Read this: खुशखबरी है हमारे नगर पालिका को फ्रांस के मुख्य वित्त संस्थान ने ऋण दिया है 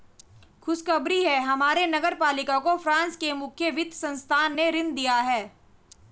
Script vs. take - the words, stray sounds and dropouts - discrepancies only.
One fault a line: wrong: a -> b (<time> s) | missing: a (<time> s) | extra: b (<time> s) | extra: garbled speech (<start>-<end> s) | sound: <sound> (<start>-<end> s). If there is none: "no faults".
no faults